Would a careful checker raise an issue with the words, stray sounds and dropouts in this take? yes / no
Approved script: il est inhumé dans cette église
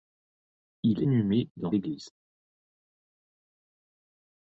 yes